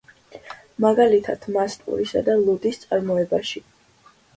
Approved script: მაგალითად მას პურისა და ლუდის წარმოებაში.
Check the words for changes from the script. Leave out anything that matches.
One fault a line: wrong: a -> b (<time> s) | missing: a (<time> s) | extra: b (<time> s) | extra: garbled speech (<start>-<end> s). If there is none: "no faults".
no faults